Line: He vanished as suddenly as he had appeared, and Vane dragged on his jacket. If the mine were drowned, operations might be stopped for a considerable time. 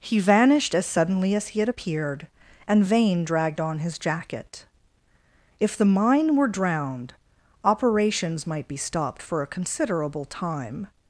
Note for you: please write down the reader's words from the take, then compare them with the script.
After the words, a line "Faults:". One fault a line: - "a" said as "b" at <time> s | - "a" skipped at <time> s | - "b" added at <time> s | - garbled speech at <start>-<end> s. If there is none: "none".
He vanished as suddenly as he had appeared, and Vane dragged on his jacket. If the mine were drowned, operations might be stopped for a considerable time.
Faults:
none